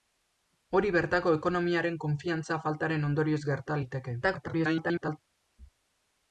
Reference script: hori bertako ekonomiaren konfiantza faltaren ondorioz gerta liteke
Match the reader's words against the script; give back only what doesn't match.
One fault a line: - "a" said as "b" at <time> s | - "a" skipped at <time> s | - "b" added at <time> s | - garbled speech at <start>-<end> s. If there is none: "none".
- garbled speech at 4.2-5.2 s